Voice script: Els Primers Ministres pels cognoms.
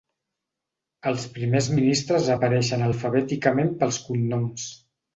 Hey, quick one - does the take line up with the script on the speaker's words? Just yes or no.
no